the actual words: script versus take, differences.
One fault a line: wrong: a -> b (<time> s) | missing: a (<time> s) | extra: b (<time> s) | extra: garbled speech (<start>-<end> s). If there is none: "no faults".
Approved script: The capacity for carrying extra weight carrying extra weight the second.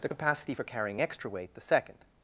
missing: carrying extra weight (1.5 s)